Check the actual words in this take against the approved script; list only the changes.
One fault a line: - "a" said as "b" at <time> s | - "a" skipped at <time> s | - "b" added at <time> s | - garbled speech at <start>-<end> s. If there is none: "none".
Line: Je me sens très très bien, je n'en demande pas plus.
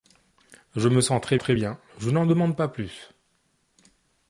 none